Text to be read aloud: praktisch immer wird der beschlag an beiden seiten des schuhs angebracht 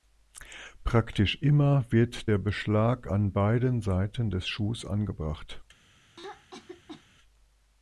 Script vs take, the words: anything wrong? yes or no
no